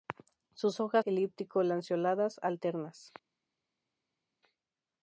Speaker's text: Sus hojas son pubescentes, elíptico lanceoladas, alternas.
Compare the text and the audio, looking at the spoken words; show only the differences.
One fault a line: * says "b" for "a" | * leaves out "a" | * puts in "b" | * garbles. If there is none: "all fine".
* leaves out "son pubescentes"